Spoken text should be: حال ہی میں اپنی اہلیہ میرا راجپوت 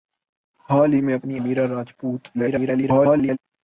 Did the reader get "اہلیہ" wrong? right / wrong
wrong